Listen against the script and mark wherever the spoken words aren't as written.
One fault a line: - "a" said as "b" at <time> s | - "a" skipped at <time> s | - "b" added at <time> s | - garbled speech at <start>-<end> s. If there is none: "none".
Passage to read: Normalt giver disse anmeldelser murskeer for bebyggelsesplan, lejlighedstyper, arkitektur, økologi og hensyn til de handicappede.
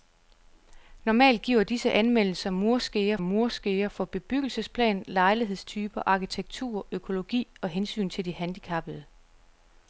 - "murskeer" added at 3.2 s